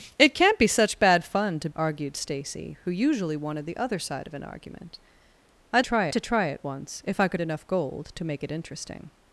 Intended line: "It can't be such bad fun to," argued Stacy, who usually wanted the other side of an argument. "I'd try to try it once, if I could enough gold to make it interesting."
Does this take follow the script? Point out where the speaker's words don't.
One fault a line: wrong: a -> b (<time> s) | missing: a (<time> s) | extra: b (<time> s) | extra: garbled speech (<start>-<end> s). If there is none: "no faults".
no faults